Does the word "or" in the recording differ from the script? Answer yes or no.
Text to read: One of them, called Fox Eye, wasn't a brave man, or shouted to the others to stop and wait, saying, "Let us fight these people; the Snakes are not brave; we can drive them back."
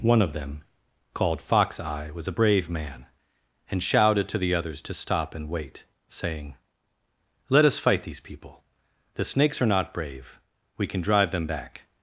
yes